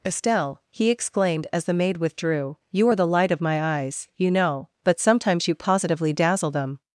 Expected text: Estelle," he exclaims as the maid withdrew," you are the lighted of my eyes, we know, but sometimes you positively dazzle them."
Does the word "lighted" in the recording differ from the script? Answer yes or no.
yes